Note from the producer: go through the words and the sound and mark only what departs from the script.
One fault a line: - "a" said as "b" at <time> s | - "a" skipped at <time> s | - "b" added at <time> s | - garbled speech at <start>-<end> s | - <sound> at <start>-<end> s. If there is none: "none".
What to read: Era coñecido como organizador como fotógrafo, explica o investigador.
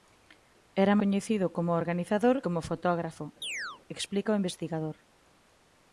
- chirp at 3.4-3.8 s